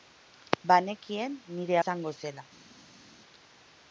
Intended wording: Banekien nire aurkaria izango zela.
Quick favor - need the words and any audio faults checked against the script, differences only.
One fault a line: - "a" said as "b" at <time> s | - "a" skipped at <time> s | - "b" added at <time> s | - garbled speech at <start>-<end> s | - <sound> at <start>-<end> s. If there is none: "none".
- "aurkaria" skipped at 1.8 s